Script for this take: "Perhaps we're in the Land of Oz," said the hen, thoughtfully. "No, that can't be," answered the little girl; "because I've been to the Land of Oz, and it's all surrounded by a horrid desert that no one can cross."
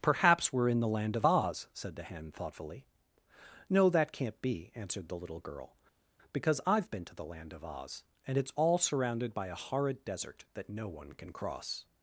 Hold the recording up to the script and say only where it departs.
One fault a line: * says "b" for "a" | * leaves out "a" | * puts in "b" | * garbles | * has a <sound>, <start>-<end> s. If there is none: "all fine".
all fine